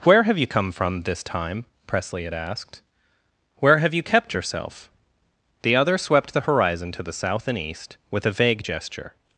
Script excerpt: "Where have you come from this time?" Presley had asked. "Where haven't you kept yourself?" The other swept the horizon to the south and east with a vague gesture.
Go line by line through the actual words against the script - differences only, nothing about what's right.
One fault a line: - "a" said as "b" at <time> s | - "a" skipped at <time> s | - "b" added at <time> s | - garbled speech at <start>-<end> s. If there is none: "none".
- "haven't" said as "have" at 3.8 s